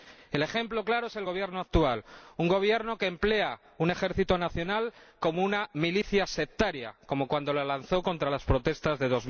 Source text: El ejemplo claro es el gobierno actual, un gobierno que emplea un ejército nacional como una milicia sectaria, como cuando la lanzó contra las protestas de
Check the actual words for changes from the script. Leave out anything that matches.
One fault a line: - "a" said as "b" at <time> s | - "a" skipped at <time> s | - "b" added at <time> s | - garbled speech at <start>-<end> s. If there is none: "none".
none